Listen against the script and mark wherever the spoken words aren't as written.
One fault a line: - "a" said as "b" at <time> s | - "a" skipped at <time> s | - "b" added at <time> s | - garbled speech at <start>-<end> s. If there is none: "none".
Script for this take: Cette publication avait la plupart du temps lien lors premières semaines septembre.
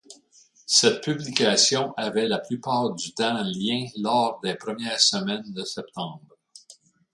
- "des" added at 4.4 s
- "de" added at 5.5 s